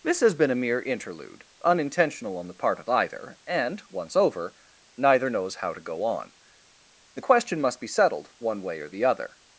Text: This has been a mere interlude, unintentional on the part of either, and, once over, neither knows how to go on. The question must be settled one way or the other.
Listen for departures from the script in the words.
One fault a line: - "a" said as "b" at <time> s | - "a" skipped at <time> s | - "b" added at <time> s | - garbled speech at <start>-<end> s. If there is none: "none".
none